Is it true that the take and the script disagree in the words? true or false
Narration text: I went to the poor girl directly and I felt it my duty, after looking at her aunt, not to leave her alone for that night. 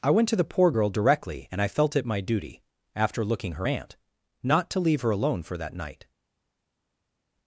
true